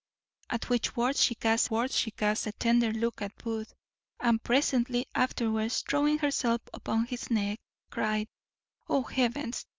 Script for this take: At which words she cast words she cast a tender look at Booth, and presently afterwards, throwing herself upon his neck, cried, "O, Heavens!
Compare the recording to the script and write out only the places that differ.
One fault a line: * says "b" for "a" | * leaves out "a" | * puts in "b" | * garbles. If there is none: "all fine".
all fine